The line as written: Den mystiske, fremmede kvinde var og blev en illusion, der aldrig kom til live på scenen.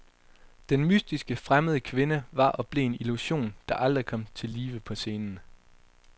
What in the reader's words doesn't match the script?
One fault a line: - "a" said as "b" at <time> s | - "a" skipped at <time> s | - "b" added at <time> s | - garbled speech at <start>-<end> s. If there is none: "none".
none